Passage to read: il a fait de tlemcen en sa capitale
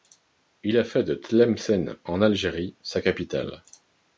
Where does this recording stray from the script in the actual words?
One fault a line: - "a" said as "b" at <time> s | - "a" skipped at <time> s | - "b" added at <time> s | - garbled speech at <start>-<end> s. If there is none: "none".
- "algérie" added at 2.2 s